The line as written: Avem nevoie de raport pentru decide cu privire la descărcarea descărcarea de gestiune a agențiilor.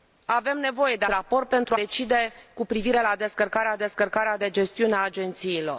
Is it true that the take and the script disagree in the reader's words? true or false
false